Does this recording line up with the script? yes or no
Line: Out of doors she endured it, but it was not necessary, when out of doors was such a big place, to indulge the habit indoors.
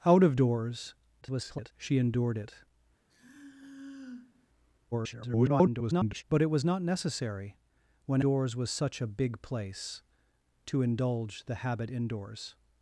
no